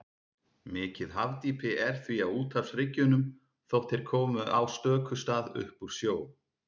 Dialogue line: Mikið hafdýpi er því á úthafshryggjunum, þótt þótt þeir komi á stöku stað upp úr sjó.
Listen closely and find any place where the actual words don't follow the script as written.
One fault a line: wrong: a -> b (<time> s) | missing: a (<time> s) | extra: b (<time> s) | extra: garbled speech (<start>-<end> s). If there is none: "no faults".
missing: þótt (3.9 s)